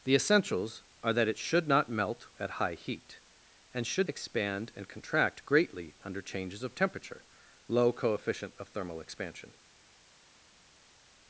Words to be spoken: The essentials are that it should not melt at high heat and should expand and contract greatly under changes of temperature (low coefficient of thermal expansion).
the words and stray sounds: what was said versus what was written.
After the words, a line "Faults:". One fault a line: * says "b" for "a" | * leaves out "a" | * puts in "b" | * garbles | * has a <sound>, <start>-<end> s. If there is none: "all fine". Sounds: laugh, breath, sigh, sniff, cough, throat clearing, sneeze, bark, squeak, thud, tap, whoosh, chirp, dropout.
The essentials are that it should not melt at high heat and should expand and contract greatly under changes of temperature (low coefficient of thermal expansion).
Faults:
all fine